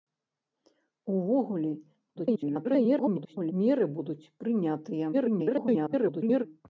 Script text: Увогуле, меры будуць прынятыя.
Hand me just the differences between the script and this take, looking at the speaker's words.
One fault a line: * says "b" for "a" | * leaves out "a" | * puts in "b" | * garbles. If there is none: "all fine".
* garbles
* garbles